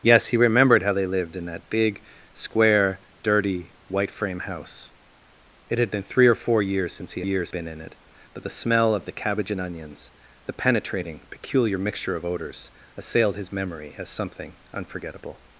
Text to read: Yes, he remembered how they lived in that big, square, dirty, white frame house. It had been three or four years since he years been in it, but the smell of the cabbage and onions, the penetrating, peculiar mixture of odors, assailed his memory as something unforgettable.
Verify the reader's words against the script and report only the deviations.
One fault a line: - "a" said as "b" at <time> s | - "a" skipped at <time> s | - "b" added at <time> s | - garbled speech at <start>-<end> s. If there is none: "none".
none